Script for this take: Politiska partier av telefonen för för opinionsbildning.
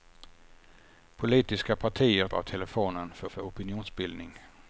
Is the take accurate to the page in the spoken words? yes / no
yes